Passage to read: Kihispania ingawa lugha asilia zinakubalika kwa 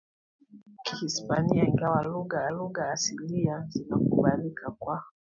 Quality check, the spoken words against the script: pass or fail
fail